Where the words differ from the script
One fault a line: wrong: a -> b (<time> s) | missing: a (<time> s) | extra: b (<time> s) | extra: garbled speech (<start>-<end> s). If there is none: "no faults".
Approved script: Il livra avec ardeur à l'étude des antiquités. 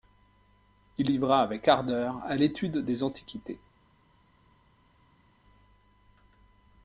no faults